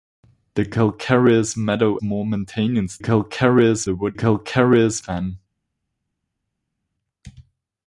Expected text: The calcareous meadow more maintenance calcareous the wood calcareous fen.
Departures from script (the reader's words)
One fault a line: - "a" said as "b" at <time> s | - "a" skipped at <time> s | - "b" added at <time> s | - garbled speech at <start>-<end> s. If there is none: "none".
none